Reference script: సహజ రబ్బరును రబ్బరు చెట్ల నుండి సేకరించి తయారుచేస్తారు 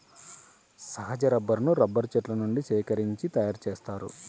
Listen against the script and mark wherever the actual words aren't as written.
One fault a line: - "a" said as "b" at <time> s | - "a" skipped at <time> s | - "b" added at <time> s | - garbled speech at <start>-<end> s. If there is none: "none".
none